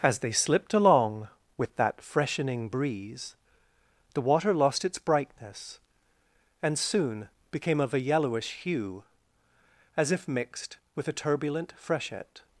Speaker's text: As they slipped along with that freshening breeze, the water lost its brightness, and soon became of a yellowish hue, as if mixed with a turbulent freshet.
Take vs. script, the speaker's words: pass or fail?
pass